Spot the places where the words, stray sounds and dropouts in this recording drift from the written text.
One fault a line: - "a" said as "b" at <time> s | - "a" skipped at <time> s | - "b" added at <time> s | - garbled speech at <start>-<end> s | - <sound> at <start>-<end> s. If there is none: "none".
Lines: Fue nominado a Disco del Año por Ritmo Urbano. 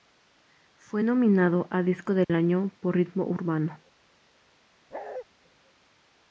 - dropout at 2.2-2.3 s
- bark at 4.9-5.3 s